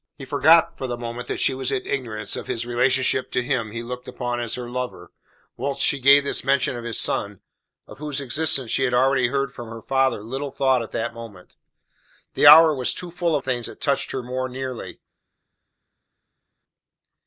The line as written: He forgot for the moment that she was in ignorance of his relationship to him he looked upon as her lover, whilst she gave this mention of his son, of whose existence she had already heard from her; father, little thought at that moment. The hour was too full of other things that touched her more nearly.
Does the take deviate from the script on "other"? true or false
true